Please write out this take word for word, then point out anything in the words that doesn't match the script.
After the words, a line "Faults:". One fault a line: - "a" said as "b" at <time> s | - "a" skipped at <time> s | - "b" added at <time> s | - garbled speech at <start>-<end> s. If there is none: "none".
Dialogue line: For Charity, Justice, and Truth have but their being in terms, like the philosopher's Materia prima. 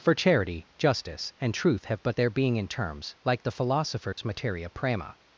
For Charity, Justice, and Truth have but their being in terms, like the philosopher's Materia prima.
Faults:
none